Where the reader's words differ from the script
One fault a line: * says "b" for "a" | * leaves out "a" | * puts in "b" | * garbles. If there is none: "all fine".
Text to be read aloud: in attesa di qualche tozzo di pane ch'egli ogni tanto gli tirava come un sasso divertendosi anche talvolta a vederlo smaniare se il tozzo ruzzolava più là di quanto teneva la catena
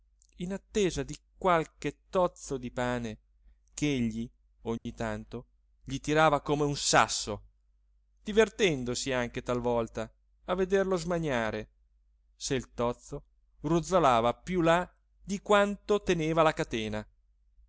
all fine